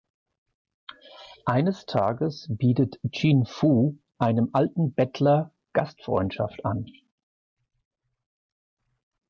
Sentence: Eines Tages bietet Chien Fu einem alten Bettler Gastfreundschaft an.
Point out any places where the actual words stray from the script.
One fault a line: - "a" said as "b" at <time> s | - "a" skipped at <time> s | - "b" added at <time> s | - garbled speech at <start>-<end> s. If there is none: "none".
none